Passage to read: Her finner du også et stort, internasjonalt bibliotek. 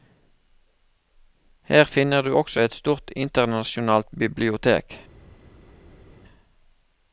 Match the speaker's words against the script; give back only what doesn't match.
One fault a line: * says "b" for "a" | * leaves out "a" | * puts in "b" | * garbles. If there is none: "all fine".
all fine